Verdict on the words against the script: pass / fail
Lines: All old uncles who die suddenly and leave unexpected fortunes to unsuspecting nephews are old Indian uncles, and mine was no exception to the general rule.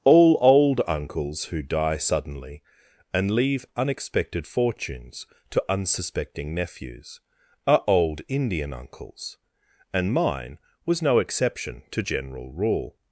fail